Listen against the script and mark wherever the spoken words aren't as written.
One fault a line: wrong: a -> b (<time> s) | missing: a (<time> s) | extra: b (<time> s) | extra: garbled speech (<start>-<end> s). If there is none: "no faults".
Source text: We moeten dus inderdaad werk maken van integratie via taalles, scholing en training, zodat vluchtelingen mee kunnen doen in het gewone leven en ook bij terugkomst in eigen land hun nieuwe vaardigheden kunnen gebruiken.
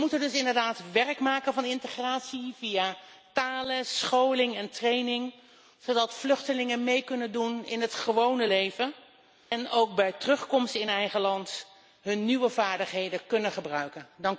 no faults